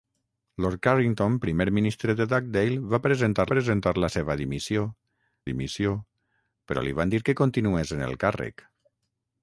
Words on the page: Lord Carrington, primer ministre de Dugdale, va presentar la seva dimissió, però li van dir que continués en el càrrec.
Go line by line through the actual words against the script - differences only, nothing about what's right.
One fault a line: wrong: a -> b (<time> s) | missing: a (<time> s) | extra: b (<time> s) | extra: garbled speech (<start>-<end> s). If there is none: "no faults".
extra: presentar (3.5 s)
extra: dimissió (5.5 s)